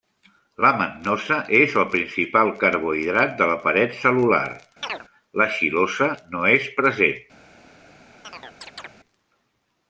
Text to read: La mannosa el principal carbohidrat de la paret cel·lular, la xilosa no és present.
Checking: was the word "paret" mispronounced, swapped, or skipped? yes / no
no